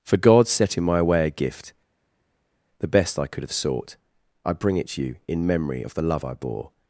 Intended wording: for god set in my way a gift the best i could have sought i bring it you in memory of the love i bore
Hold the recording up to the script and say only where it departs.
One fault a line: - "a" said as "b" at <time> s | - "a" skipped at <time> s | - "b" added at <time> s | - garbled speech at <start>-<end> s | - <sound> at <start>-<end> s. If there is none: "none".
- "to" added at 4.9 s